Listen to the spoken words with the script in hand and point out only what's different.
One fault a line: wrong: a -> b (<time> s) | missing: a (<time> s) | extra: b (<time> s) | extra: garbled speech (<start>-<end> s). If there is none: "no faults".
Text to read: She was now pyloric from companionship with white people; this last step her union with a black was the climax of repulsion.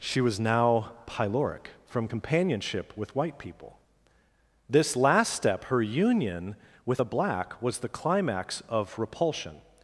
no faults